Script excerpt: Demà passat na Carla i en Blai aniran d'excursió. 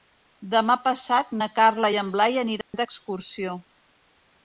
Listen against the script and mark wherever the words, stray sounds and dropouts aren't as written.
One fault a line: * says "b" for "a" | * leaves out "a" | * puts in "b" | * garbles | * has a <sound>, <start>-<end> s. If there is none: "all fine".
* has a dropout, 2.6-2.7 s